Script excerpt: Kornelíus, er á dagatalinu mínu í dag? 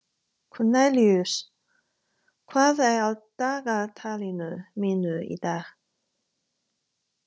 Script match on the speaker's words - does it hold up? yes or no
no